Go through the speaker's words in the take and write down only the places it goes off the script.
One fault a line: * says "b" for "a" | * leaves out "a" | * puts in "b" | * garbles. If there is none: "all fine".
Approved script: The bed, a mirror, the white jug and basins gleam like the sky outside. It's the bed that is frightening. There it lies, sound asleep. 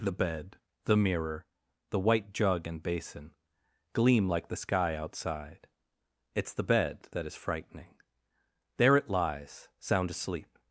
* says "the" for "a"
* says "basin" for "basins"